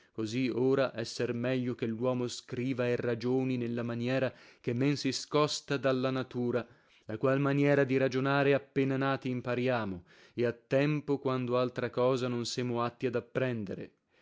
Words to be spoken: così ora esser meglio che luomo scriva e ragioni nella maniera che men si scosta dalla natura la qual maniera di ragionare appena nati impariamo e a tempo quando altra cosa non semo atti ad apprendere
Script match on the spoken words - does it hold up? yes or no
yes